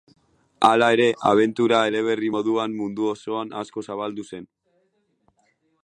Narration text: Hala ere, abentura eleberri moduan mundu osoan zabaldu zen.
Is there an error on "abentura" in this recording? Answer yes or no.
no